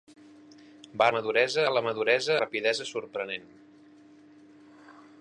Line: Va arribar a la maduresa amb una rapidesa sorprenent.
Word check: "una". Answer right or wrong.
wrong